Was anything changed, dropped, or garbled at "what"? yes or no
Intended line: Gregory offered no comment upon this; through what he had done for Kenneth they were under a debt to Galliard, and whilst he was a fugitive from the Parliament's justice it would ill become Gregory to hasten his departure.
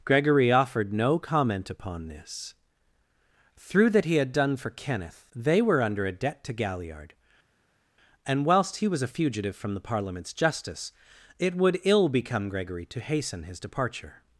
yes